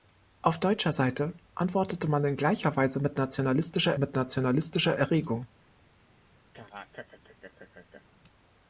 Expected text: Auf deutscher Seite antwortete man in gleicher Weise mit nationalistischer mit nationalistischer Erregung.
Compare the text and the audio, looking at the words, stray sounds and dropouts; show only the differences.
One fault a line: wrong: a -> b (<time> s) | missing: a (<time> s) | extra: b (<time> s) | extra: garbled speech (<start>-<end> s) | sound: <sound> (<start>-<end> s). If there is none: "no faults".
sound: laugh (6.5-8.0 s)